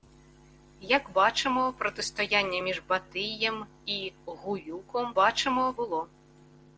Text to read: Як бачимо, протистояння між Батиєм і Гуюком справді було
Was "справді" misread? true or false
true